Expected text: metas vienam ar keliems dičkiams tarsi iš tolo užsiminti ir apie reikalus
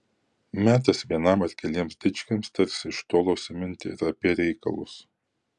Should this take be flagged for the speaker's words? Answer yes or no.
no